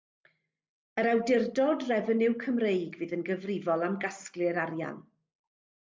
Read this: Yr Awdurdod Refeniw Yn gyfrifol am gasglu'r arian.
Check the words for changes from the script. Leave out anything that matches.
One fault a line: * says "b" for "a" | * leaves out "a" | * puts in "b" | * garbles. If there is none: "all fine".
* puts in "Cymreig fydd"